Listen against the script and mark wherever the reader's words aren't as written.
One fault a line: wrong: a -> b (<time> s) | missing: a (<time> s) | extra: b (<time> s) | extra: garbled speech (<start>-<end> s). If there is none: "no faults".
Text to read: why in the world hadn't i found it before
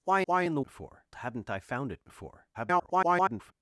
extra: why (0.2 s)
wrong: world -> before (0.6 s)
extra: garbled speech (2.5-3.5 s)